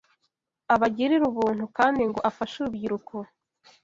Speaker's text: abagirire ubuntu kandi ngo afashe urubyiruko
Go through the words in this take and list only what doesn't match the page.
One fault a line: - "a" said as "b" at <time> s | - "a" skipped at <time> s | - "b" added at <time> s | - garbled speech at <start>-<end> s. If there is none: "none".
none